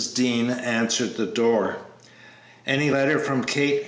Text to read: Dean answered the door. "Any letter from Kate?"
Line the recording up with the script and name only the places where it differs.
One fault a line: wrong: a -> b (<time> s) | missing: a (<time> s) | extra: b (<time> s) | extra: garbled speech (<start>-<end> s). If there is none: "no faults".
no faults